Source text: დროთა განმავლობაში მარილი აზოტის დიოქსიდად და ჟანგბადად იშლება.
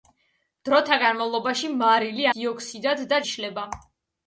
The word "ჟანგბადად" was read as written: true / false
false